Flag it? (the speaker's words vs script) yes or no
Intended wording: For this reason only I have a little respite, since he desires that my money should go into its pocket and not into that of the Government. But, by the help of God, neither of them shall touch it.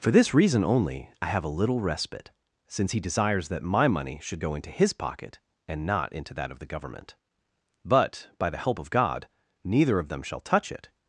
yes